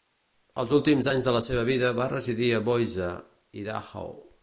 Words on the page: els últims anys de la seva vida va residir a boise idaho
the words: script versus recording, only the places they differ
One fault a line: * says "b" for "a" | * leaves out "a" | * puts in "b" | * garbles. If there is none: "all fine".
all fine